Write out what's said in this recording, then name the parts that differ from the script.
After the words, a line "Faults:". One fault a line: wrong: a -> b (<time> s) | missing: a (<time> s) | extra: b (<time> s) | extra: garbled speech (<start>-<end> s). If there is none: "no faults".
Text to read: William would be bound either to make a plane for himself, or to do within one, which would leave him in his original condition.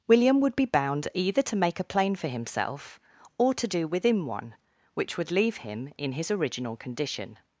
William would be bound either to make a plane for himself, or to do within one, which would leave him in his original condition.
Faults:
no faults